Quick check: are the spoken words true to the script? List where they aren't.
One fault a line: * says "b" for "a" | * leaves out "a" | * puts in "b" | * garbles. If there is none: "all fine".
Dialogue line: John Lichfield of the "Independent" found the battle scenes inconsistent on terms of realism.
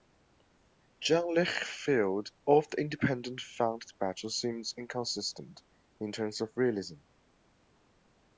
* says "in" for "on"